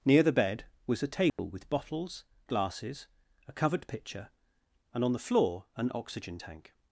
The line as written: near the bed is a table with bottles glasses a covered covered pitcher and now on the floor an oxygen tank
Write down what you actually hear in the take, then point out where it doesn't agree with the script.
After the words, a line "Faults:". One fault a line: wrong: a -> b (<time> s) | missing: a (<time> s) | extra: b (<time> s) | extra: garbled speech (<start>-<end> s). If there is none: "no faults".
near the bed was a table with bottles glasses a covered pitcher and on the floor an oxygen tank
Faults:
wrong: is -> was (0.9 s)
missing: covered (3.9 s)
missing: now (5.0 s)